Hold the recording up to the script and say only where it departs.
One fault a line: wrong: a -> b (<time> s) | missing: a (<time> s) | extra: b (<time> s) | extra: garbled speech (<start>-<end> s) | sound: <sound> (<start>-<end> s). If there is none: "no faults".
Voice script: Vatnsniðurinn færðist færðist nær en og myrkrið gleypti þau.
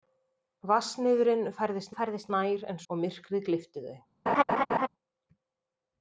sound: laugh (4.3-4.9 s)